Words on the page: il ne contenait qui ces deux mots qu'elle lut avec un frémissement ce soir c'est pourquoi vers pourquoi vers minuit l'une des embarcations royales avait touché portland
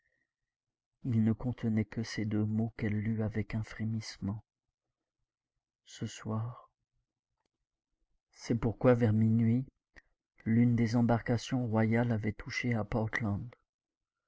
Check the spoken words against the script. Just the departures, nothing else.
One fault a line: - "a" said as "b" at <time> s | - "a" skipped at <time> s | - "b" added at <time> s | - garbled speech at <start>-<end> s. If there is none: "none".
- "qui" said as "que" at 1.9 s
- "pourquoi vers" skipped at 9.1 s
- "à" added at 12.7 s